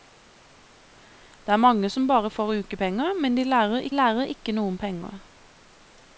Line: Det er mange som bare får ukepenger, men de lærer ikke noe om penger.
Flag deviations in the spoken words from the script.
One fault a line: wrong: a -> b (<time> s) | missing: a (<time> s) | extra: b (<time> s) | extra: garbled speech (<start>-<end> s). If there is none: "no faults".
extra: lærer (4.0 s)